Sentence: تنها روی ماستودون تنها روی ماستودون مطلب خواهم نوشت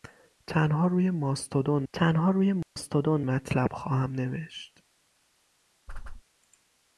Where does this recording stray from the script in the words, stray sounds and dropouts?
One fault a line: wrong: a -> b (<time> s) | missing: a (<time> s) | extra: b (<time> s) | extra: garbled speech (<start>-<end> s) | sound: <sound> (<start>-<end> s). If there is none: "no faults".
sound: dropout (2.6-2.8 s)
sound: whoosh (5.9-6.2 s)